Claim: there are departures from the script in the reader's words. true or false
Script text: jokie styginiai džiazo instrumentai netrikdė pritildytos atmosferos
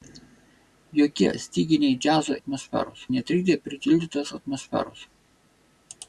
true